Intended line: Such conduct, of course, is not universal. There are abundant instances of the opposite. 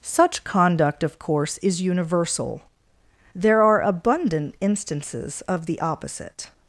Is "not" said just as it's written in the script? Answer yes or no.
no